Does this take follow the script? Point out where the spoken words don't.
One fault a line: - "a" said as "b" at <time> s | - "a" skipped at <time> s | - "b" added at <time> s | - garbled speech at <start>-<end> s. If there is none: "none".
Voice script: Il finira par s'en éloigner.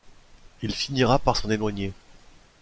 none